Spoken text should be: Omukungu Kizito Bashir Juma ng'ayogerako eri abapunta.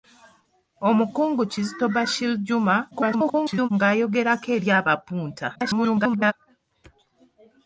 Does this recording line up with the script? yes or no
no